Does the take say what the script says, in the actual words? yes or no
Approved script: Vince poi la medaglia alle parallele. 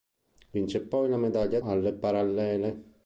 yes